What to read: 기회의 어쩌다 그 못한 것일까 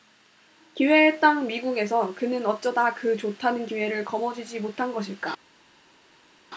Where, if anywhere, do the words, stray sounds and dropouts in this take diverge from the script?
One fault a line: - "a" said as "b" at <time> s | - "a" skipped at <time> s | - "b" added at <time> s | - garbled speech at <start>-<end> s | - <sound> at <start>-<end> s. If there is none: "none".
- "땅 미국에서 그는" added at 1.2 s
- "좋다는 기회를 거머쥐지" added at 3.1 s